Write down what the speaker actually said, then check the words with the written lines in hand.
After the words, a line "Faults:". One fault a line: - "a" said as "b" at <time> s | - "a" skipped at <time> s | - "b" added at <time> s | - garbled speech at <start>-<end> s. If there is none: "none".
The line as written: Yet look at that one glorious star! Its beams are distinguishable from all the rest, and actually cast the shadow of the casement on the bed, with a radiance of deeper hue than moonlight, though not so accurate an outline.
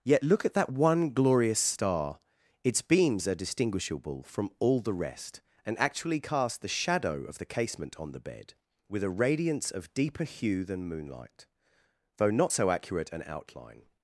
Yet look at that one glorious star! Its beams are distinguishable from all the rest, and actually cast the shadow of the casement on the bed, with a radiance of deeper hue than moonlight, though not so accurate an outline.
Faults:
none